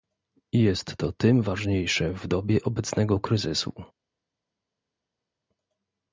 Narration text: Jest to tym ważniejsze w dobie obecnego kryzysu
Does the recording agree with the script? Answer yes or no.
yes